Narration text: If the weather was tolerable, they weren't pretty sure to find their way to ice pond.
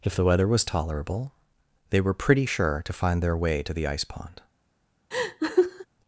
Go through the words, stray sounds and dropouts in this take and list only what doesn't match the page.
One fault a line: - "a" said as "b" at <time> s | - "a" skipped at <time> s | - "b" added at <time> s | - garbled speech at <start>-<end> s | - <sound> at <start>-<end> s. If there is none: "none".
- "weren't" said as "were" at 2.0 s
- "the" added at 3.7 s
- laugh at 5.1-5.9 s